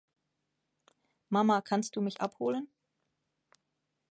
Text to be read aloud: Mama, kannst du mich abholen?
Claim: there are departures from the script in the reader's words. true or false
false